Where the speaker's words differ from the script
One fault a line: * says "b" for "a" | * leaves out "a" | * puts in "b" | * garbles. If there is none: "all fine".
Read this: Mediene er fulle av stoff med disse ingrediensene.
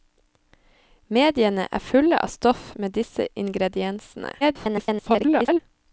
* garbles